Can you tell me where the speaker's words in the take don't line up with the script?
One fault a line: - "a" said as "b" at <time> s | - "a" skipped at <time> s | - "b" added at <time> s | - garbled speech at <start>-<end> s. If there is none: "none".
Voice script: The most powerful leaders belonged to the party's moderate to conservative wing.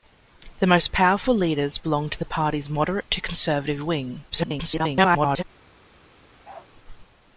- garbled speech at 4.3-5.4 s